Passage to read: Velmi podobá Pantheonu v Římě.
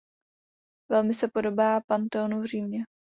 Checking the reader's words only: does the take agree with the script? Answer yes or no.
no